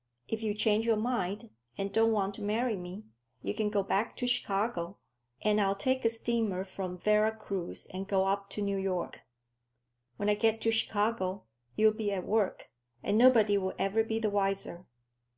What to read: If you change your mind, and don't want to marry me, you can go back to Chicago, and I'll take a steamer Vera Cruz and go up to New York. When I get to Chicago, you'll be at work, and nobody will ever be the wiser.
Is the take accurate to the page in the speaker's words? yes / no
no